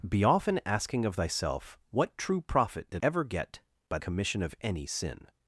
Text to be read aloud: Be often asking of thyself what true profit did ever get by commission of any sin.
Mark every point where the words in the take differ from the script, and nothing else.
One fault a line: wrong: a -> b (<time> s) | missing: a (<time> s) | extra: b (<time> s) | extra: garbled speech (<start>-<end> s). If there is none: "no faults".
no faults